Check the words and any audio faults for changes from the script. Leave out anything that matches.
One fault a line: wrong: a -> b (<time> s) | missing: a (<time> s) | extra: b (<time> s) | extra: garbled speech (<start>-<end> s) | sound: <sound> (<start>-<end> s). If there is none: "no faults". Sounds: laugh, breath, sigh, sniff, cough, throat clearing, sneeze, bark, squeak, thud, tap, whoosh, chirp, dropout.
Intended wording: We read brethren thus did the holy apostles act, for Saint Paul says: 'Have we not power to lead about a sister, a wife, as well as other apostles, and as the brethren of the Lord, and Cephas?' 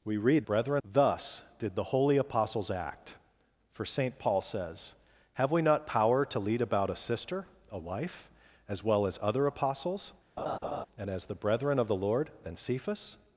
sound: laugh (10.4-10.9 s)